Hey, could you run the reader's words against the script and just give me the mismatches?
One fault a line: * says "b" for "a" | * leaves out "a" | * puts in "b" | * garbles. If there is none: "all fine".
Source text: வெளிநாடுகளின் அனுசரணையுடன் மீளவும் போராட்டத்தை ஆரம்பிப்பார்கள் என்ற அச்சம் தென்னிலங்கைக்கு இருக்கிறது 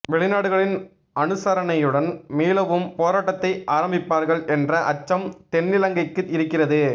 all fine